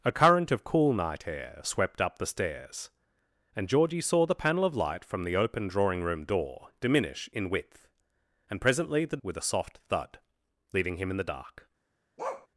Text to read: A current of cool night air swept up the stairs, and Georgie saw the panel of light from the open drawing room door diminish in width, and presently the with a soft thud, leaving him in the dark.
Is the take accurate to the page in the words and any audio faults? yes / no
no